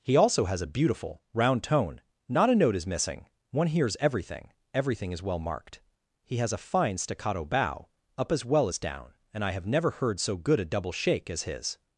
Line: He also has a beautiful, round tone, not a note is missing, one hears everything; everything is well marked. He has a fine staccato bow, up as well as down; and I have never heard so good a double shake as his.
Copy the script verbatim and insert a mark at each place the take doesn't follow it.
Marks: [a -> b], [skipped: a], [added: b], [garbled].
He also has a beautiful, round tone, not a note is missing, one hears everything; everything is well marked. He has a fine staccato bow, up as well as down; and I have never heard so good a double shake as his.